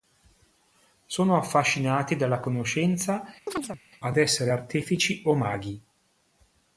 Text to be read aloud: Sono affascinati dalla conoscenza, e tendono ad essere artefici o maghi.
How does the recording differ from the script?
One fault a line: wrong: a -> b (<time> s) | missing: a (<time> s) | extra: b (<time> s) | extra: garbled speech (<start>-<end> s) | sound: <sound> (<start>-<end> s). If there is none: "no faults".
missing: e tendono (3.3 s)
sound: chirp (3.5-3.8 s)